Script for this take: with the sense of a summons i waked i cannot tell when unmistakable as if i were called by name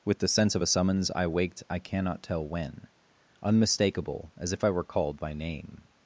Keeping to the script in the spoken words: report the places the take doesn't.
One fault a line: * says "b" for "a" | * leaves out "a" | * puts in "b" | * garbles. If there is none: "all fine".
all fine